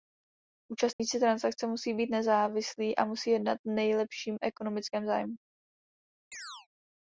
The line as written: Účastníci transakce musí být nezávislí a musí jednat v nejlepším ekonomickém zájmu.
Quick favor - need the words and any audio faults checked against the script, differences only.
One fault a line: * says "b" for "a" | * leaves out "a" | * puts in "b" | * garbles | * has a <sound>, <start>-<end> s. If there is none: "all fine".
* has a dropout, 0.9-1.0 s
* has a chirp, 6.3-6.7 s